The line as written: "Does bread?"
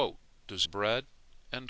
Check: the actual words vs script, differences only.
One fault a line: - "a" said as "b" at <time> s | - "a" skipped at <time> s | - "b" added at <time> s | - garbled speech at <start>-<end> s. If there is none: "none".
none